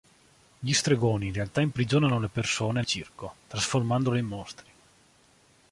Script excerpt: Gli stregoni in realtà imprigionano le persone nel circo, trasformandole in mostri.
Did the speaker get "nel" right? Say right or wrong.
wrong